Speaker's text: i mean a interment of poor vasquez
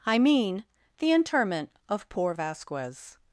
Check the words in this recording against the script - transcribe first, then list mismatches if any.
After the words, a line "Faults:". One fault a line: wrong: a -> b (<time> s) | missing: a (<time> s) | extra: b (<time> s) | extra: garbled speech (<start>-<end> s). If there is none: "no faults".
i mean the interment of poor vasquez
Faults:
wrong: a -> the (1.0 s)